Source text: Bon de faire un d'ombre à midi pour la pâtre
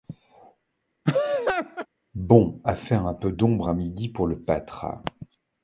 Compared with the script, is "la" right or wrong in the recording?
wrong